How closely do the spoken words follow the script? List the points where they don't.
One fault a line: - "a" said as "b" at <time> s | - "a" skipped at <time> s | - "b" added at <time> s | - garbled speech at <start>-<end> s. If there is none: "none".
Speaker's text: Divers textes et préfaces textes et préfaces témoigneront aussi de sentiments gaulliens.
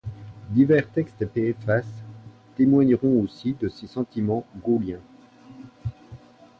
- "textes et préfaces" skipped at 1.9 s
- "ses" added at 3.7 s